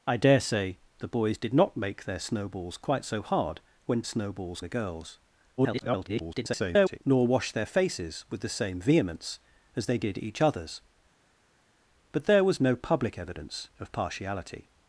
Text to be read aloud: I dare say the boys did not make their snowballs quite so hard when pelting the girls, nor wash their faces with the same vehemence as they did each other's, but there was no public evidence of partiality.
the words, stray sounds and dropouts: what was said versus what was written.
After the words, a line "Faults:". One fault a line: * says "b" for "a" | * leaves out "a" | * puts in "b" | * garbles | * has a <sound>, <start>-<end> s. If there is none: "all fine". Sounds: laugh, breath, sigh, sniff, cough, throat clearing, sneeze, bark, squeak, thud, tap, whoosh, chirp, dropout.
I dare say the boys did not make their snowballs quite so hard when snowballs the girls, [garbled] nor wash their faces with the same vehemence as they did each other's, but there was no public evidence of partiality.
Faults:
* says "snowballs" for "pelting"
* garbles